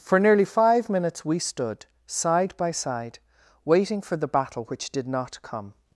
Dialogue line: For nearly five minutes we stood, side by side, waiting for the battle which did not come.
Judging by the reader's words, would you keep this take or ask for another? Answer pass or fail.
pass